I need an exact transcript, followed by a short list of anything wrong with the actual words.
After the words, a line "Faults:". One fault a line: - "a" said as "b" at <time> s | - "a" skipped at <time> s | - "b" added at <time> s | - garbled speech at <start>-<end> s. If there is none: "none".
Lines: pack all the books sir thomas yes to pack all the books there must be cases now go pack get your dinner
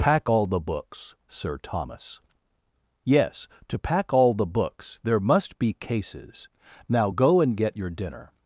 pack all the books sir thomas yes to pack all the books there must be cases now go and get your dinner
Faults:
- "pack" said as "and" at 7.4 s